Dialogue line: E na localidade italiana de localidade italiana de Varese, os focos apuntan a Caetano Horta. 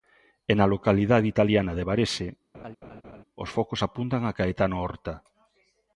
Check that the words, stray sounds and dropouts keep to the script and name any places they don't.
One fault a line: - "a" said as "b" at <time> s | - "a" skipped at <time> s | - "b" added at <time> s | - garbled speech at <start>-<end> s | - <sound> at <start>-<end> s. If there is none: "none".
- "localidade italiana de" skipped at 1.9 s
- laugh at 2.5-3.2 s